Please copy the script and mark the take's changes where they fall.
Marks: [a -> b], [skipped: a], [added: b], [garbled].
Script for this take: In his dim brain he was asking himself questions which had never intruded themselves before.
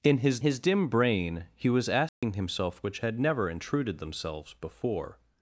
In his [added: his] dim brain he was asking himself [skipped: questions] which had never intruded themselves before.